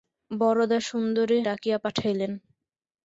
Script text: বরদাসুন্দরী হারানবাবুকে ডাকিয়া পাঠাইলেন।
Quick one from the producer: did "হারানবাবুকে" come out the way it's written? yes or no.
no